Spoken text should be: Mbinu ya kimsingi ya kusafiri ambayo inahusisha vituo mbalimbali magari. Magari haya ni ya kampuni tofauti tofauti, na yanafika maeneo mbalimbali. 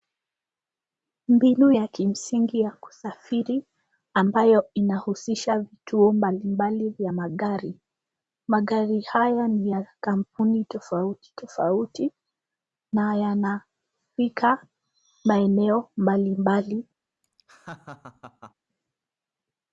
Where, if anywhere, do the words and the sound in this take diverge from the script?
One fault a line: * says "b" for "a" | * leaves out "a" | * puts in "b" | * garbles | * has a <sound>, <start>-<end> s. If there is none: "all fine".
* puts in "vya"
* has a laugh, 17.2-18.5 s